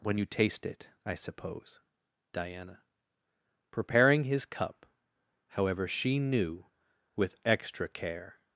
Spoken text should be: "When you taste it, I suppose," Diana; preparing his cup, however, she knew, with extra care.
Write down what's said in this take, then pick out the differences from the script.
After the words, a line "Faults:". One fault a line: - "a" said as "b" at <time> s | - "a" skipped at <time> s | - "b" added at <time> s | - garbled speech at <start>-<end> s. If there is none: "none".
"When you taste it, I suppose," Diana; preparing his cup, however, she knew, with extra care.
Faults:
none